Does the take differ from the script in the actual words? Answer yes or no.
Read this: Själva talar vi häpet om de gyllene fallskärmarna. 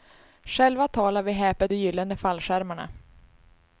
yes